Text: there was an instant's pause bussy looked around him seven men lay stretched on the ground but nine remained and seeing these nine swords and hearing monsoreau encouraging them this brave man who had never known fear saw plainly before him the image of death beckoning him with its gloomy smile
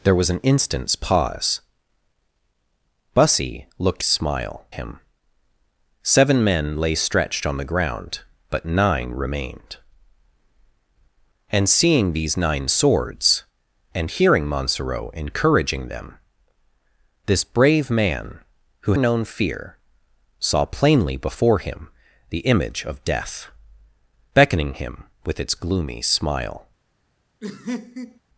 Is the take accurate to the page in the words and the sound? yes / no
no